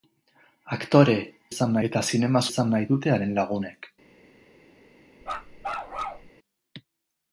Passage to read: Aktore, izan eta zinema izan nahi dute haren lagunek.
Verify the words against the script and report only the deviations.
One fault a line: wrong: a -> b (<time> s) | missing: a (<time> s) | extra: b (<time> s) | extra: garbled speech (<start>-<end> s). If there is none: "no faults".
no faults